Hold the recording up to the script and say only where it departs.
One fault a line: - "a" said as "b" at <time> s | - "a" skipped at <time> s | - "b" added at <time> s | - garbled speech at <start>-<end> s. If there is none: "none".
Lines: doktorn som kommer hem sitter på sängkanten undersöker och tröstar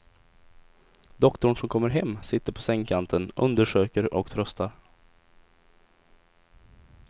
none